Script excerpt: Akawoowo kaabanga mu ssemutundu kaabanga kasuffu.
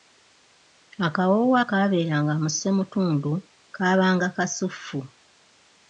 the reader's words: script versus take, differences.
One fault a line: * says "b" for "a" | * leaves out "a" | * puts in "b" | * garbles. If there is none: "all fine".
* says "akaabeeranga" for "kaabanga"